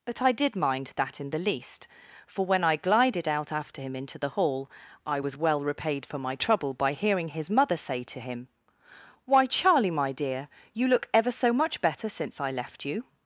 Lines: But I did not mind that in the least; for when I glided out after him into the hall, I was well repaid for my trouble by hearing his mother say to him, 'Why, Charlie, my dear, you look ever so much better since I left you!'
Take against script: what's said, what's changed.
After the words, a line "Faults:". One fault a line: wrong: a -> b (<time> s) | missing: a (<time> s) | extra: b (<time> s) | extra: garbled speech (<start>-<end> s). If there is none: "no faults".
But I did mind that in the least; for when I glided out after him into the hall, I was well repaid for my trouble by hearing his mother say to him, 'Why, Charlie, my dear, you look ever so much better since I left you!'
Faults:
missing: not (0.6 s)